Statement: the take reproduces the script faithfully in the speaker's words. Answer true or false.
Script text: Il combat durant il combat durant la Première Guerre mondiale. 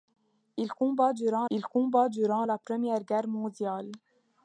true